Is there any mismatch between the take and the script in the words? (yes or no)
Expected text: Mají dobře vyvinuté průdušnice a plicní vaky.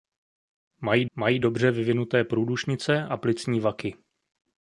yes